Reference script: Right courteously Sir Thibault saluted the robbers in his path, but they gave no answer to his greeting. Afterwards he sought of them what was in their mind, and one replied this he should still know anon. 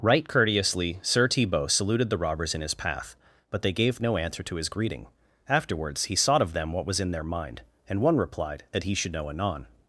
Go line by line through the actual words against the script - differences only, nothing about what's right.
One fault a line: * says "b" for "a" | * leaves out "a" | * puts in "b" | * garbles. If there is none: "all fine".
* says "that" for "this"
* leaves out "still"